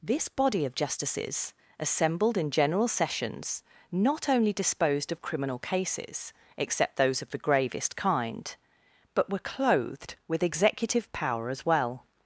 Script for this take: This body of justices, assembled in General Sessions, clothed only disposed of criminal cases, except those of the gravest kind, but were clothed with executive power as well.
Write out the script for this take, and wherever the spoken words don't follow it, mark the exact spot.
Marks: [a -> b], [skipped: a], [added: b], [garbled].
This body of justices, assembled in General Sessions, [clothed -> not] only disposed of criminal cases, except those of the gravest kind, but were clothed with executive power as well.